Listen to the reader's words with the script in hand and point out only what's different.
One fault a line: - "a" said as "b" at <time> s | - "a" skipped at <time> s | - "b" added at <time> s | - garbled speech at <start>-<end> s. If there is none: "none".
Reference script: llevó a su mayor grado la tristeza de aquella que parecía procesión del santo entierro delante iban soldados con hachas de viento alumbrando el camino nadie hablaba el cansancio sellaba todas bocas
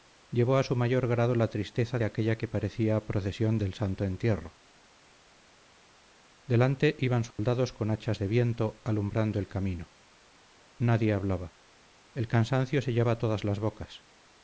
- "las" added at 13.4 s